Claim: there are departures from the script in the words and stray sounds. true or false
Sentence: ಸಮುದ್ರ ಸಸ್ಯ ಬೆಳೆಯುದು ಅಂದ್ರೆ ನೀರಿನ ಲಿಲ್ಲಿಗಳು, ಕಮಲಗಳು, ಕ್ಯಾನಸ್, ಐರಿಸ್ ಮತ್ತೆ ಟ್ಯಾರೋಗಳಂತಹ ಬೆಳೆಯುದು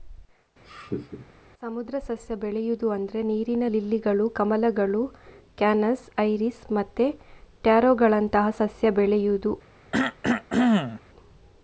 true